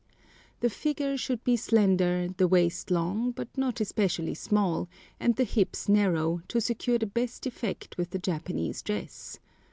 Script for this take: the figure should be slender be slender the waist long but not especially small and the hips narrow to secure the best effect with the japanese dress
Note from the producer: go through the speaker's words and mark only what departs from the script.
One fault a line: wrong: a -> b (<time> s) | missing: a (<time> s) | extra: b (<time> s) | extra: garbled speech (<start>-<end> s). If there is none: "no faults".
missing: be slender (2.3 s)